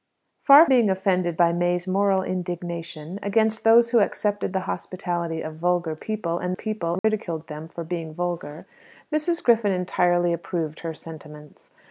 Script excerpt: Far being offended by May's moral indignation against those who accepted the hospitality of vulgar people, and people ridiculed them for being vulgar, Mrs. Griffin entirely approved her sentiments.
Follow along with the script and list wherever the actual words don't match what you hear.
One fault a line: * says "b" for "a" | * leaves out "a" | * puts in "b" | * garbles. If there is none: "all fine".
all fine